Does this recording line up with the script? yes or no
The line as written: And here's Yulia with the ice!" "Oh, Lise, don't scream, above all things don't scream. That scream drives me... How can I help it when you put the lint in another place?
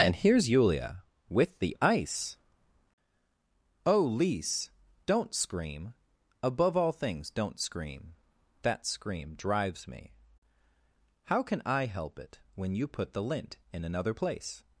yes